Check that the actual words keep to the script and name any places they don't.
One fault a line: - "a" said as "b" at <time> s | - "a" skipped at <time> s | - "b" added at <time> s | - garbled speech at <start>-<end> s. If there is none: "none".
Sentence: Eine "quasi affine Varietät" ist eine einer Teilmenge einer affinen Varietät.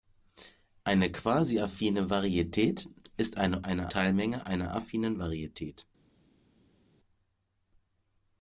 none